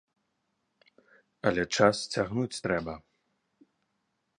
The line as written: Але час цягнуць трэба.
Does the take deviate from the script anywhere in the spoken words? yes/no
no